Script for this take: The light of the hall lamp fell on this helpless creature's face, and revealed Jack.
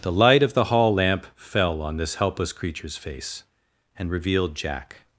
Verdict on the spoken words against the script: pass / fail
pass